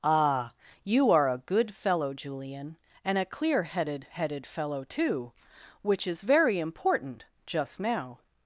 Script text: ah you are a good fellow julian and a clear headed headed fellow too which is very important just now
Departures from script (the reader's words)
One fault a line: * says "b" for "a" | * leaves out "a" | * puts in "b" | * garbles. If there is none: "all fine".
all fine